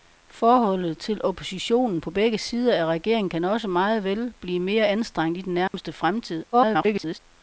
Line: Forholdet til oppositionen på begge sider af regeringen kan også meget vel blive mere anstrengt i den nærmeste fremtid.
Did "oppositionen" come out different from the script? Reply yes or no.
no